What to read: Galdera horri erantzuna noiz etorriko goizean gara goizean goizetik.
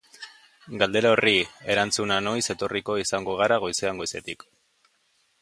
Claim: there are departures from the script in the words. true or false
true